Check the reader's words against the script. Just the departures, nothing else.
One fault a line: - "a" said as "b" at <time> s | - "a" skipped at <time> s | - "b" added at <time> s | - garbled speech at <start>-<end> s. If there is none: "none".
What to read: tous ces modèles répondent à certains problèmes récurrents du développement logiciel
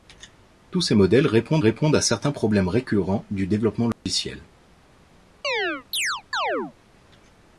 - "répondent" added at 1.6 s